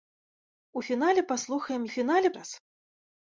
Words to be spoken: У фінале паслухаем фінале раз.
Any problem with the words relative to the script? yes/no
no